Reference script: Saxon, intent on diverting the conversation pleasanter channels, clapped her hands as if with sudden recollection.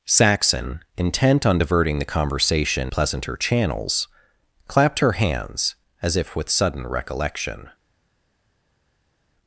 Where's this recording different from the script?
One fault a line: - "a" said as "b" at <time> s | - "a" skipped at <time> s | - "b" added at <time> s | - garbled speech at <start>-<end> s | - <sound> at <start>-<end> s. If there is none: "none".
none